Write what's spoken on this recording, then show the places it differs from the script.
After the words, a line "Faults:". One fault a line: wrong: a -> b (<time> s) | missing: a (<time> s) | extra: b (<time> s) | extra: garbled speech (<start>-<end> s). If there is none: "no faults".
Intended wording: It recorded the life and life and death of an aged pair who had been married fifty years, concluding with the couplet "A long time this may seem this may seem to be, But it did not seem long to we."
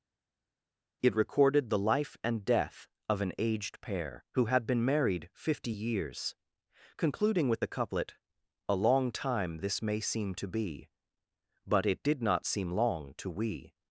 It recorded the life and death of an aged pair who had been married fifty years, concluding with the couplet "A long time this may seem to be, But it did not seem long to we."
Faults:
missing: life and (2.4 s)
missing: this may seem (10.3 s)